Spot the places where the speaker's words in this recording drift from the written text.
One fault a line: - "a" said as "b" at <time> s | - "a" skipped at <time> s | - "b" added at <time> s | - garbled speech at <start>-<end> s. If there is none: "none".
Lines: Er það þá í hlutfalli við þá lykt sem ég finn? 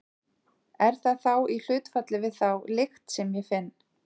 none